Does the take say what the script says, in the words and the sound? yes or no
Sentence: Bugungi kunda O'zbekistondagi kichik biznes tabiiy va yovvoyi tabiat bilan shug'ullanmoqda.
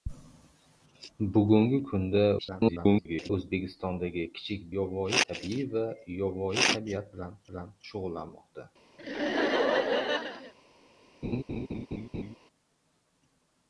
no